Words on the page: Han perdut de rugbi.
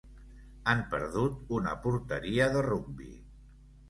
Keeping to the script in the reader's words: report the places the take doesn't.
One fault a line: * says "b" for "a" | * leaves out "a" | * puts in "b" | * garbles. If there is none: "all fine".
* puts in "una porteria"